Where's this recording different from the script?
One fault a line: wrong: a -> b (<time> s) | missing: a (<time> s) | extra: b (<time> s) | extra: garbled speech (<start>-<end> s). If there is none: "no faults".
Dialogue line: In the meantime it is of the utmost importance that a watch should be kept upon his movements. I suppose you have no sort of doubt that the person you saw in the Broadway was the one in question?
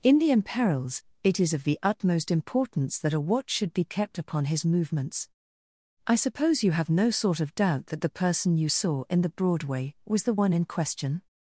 wrong: meantime -> imperils (0.3 s)